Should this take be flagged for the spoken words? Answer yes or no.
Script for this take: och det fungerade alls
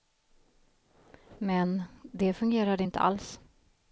yes